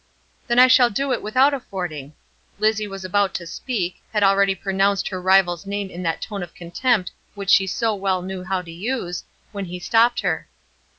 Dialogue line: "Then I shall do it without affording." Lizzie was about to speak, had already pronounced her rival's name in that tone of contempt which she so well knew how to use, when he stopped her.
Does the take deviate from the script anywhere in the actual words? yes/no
no